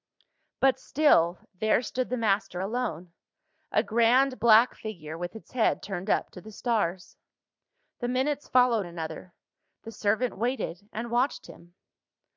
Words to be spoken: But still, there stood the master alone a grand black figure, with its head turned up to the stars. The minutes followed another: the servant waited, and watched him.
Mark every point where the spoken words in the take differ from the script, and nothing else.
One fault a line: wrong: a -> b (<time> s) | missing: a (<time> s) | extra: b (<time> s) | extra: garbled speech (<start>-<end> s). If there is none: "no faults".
no faults